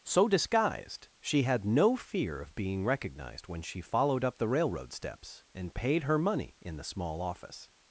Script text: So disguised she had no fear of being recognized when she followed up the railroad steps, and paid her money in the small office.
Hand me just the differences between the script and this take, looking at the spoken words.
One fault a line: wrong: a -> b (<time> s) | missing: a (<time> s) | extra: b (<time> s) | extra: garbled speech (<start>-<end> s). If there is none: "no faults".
no faults